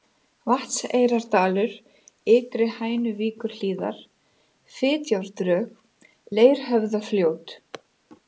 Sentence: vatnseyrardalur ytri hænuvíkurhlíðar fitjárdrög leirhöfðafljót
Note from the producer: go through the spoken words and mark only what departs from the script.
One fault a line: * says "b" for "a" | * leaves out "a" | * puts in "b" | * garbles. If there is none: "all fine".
all fine